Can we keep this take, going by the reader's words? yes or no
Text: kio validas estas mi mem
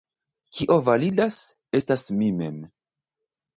yes